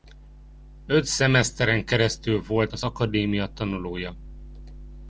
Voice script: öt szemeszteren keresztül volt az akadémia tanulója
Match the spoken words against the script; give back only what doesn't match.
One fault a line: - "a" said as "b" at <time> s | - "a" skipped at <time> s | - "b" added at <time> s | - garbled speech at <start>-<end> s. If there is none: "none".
none